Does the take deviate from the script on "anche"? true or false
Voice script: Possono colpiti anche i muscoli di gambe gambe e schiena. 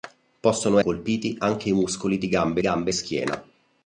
false